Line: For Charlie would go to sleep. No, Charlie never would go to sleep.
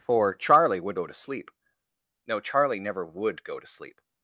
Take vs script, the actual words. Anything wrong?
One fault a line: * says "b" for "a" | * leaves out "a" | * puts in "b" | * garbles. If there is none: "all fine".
all fine